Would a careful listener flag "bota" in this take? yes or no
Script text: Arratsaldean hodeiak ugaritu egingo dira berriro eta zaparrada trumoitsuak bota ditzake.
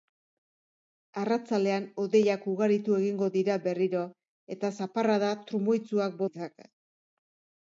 yes